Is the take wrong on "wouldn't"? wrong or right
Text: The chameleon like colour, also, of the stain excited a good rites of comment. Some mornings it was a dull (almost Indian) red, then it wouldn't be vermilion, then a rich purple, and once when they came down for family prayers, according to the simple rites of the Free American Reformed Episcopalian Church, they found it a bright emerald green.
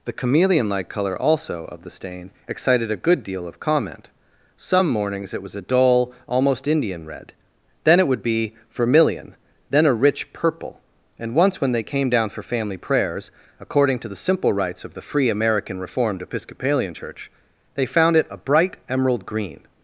wrong